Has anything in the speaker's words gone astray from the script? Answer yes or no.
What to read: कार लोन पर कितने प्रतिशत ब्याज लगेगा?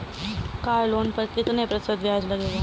no